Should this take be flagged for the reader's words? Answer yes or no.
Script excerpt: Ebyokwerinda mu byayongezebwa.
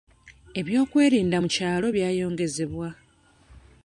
yes